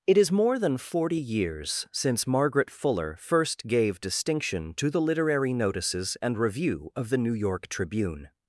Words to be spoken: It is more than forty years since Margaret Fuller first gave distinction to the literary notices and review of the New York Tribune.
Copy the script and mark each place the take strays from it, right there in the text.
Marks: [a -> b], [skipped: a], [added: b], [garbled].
It is more than forty years since Margaret Fuller first gave distinction to the literary notices and review of the New York Tribune.